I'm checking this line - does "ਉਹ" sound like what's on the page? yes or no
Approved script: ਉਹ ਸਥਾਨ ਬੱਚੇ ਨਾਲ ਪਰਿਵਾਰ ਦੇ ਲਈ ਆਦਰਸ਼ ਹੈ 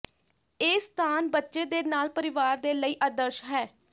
no